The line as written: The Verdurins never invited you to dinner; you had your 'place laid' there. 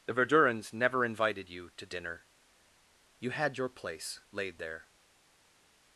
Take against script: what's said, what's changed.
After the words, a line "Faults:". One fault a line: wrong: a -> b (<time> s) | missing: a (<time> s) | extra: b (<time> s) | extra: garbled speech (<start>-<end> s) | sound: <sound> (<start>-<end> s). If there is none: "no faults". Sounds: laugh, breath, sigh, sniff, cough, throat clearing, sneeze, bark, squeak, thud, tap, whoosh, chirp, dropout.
The Verdurins never invited you to dinner; you had your 'place laid' there.
Faults:
no faults